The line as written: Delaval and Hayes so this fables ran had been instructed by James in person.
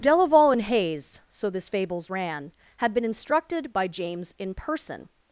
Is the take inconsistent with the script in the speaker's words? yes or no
no